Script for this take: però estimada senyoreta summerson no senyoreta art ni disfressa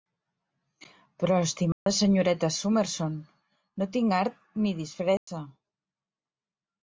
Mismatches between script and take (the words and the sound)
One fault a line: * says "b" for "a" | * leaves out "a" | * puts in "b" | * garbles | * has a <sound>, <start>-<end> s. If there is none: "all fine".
* has a dropout, 1.7-1.9 s
* says "tinc" for "senyoreta"
* has a dropout, 5.2-5.3 s